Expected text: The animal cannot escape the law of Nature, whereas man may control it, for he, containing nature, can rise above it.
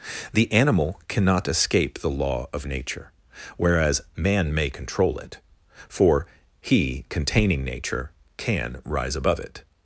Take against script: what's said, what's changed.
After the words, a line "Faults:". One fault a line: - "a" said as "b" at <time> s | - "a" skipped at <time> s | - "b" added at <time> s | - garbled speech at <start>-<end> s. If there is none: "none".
The animal cannot escape the law of Nature, whereas man may control it, for he, containing nature, can rise above it.
Faults:
none